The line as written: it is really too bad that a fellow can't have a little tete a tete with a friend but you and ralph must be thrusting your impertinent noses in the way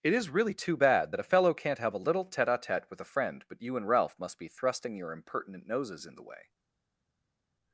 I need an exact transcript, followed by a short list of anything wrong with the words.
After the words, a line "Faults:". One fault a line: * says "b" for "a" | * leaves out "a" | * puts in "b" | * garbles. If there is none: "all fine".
it is really too bad that a fellow can't have a little tete a tete with a friend but you and ralph must be thrusting your impertinent noses in the way
Faults:
all fine